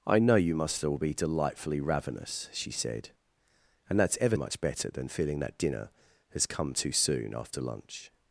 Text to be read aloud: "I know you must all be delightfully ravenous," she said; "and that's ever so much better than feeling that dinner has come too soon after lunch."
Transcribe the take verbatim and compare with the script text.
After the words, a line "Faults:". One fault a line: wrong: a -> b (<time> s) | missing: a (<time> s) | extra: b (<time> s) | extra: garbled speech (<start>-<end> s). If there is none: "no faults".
"I know you must all be delightfully ravenous," she said; "and that's ever much better than feeling that dinner has come too soon after lunch."
Faults:
missing: so (4.4 s)